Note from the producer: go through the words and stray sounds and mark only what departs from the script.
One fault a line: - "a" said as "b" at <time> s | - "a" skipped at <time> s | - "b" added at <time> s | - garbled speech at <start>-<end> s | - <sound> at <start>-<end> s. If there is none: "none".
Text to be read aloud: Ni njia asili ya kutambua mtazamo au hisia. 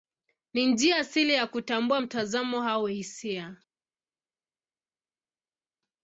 none